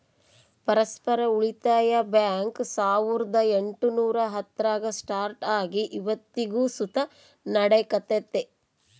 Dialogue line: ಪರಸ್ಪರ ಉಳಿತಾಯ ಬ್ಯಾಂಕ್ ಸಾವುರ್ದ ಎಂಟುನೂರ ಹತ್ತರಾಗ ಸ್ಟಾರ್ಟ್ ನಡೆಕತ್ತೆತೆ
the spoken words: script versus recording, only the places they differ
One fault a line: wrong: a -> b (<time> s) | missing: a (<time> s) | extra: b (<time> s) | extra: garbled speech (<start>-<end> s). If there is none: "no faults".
extra: ಆಗಿ ಇವತ್ತಿಗೂ ಸುತ (5.6 s)